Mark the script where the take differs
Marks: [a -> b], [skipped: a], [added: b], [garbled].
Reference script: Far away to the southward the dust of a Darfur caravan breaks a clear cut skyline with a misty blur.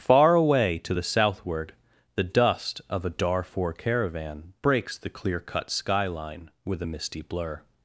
Far away to the southward the dust of a Darfur caravan breaks [a -> the] clear cut skyline with a misty blur.